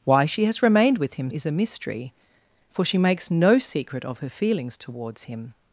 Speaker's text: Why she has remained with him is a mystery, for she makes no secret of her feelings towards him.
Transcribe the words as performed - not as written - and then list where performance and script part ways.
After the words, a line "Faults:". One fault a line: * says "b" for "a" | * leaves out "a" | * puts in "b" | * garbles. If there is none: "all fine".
Why she has remained with him is a mystery, for she makes no secret of her feelings towards him.
Faults:
all fine